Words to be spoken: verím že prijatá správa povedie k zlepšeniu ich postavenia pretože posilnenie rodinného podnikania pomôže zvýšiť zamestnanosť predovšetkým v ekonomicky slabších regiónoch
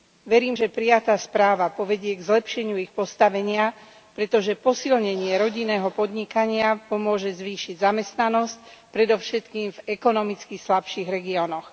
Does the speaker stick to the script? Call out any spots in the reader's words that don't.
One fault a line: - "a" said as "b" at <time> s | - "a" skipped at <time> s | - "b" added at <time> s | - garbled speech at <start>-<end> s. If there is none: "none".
none